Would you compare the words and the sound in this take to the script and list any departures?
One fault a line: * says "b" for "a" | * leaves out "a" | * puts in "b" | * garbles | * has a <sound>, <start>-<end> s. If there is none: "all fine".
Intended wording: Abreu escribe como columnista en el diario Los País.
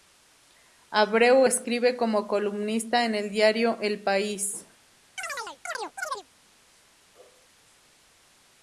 * says "El" for "Los"
* has a chirp, 5.2-6.3 s